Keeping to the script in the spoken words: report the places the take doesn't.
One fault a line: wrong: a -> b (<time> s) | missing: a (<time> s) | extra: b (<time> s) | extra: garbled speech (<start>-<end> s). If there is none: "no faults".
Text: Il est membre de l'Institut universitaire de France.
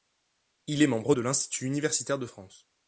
no faults